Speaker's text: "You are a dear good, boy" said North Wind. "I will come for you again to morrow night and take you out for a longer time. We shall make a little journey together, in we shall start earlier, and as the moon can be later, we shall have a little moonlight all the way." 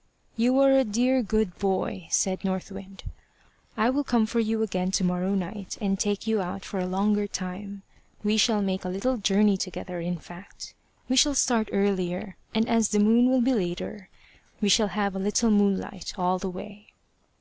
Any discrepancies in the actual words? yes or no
yes